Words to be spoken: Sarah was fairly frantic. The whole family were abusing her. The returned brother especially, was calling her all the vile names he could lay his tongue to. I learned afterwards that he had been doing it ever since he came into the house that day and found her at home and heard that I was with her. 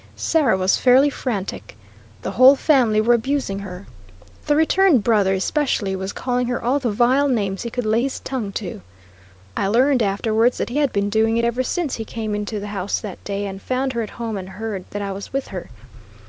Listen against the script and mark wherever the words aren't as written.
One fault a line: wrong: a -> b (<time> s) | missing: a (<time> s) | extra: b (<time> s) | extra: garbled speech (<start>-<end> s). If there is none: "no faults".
no faults